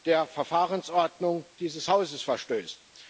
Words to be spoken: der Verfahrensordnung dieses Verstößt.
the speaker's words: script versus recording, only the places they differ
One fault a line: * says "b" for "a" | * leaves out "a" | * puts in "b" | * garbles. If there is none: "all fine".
* puts in "Hauses"